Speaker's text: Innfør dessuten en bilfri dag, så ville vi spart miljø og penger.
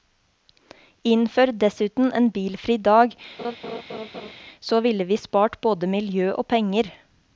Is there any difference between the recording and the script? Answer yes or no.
yes